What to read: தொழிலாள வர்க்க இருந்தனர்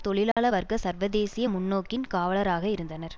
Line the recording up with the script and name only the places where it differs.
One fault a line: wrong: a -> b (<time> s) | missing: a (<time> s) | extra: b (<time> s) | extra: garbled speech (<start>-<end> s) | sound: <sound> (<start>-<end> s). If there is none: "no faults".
sound: dropout (0.3-0.4 s)
extra: சர்வதேசிய முன்னோக்கின் காவலராக (0.8 s)